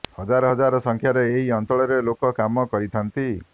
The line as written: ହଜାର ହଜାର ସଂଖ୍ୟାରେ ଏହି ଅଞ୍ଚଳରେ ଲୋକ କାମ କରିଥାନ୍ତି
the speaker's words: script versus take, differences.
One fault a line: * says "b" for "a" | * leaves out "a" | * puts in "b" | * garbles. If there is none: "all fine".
all fine